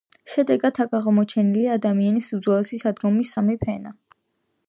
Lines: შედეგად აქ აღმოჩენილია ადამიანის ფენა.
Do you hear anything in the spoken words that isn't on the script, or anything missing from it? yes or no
yes